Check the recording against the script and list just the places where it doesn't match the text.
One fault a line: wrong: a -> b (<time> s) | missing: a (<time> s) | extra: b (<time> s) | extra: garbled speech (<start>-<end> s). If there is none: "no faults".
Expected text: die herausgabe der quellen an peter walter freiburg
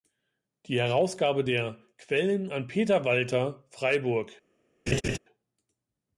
no faults